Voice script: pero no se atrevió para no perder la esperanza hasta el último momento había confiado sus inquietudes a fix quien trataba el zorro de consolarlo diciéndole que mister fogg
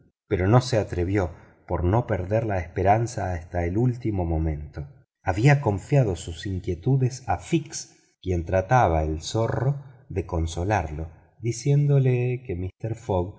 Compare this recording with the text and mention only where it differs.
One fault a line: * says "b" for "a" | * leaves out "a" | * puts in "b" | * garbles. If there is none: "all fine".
* says "por" for "para"